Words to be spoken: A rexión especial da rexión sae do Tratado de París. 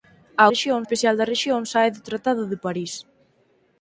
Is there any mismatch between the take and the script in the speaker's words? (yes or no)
no